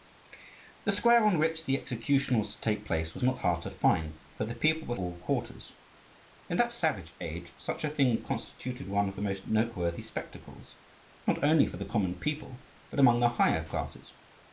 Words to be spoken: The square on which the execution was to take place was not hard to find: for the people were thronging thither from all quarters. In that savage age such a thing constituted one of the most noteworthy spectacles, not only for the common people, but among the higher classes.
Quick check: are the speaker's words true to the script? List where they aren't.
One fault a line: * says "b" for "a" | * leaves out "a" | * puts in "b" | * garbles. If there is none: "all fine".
* leaves out "thronging thither from"